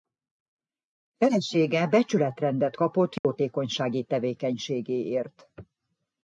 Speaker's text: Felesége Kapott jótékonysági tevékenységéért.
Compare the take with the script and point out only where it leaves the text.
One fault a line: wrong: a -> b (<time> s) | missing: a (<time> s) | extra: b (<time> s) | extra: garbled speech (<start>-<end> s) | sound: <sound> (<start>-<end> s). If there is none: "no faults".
extra: Becsületrendet (1.9 s)
sound: dropout (3.2-3.2 s)